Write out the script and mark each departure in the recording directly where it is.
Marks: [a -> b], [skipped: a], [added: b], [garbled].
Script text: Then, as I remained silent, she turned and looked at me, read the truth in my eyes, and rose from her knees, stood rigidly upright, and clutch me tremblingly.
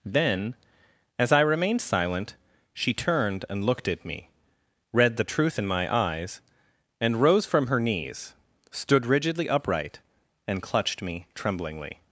Then, as I remained silent, she turned and looked at me, read the truth in my eyes, and rose from her knees, stood rigidly upright, and [clutch -> clutched] me tremblingly.